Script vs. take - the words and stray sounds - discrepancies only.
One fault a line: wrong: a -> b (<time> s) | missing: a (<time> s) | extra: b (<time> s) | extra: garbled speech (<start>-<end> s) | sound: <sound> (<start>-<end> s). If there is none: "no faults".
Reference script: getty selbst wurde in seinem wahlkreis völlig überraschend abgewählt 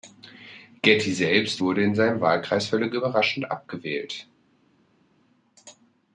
no faults